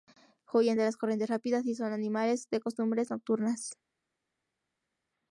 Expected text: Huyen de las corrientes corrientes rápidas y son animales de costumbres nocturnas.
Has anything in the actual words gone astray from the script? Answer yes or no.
yes